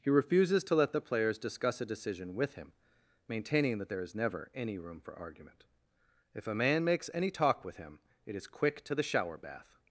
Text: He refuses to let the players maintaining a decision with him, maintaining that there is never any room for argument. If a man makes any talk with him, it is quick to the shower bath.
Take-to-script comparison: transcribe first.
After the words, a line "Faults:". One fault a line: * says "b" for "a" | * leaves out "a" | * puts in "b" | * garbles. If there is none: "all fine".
He refuses to let the players discuss a decision with him, maintaining that there is never any room for argument. If a man makes any talk with him, it is quick to the shower bath.
Faults:
* says "discuss" for "maintaining"